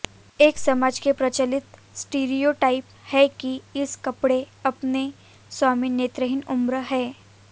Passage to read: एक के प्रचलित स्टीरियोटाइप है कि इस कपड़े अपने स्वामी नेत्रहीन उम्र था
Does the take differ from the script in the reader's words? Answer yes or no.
yes